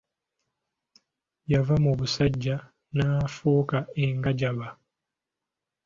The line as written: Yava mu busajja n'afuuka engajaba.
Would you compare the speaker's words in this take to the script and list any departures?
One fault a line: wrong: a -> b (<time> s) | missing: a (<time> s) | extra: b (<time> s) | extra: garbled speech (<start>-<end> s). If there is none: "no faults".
no faults